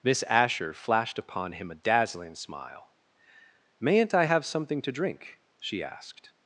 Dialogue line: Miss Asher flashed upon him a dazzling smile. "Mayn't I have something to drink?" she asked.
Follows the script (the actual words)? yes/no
yes